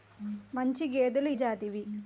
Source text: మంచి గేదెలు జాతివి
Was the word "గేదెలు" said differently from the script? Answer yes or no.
no